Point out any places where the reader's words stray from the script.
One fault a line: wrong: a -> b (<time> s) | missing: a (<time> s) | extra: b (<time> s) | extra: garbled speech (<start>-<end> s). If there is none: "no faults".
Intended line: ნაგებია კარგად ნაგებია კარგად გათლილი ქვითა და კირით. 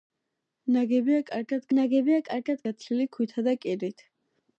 no faults